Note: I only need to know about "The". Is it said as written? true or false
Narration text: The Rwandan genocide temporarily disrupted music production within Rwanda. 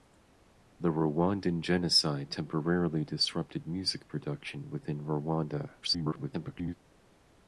true